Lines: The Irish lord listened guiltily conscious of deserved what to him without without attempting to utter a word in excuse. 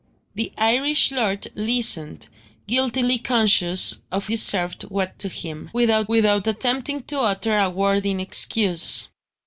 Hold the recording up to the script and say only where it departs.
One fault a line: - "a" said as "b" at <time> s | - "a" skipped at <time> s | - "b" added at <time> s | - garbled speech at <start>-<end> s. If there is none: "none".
none